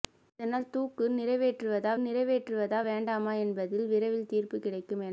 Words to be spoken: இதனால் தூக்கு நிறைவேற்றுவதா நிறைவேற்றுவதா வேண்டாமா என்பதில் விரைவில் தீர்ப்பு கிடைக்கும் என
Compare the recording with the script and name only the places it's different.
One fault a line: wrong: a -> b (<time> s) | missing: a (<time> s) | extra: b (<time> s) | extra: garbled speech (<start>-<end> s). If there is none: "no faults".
no faults